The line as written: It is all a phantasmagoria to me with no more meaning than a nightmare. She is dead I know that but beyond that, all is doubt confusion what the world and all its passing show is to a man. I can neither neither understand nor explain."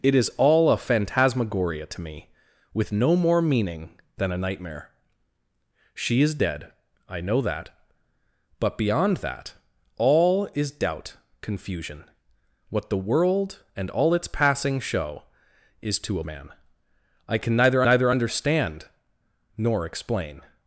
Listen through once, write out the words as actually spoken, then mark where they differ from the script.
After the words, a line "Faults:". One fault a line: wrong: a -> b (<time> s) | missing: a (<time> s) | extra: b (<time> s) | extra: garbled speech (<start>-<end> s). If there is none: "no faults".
It is all a phantasmagoria to me with no more meaning than a nightmare. She is dead I know that but beyond that, all is doubt confusion what the world and all its passing show is to a man. I can neither neither understand nor explain."
Faults:
no faults